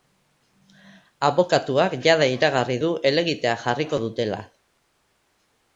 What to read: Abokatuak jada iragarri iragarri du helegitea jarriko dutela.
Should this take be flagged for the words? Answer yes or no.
yes